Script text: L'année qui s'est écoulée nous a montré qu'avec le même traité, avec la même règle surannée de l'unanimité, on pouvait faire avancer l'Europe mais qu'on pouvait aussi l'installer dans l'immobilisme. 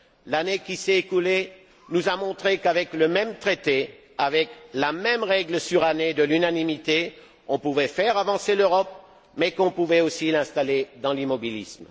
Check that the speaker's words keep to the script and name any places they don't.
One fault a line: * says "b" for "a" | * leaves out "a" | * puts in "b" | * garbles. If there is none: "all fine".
all fine